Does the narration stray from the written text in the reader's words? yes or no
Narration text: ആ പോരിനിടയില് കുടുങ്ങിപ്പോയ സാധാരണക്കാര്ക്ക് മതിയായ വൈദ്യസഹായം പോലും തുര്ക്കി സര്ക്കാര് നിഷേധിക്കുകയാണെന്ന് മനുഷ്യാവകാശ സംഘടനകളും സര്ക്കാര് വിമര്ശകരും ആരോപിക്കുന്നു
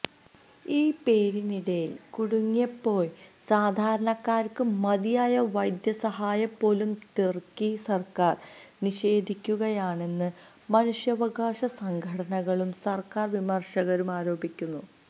yes